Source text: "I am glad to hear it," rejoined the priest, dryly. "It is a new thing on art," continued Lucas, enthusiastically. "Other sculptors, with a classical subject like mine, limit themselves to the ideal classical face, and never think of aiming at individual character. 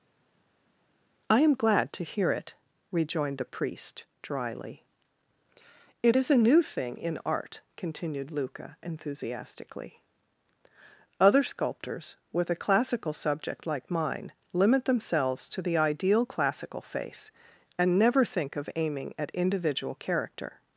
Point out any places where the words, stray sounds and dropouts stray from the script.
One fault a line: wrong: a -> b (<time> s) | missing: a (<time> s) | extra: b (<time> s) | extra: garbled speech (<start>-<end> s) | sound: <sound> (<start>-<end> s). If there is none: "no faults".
wrong: on -> in (7.0 s)
wrong: Lucas -> Luca (8.3 s)